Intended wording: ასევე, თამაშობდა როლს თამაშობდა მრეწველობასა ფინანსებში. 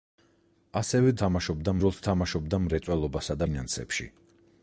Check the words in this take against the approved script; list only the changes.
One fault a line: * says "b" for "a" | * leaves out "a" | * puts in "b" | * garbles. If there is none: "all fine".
all fine